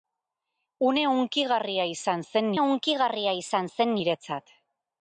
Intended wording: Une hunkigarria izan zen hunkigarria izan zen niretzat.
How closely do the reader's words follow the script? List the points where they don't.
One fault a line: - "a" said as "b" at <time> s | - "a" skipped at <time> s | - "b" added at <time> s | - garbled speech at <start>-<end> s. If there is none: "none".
none